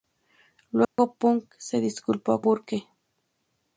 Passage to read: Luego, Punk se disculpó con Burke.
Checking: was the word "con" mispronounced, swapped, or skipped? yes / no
yes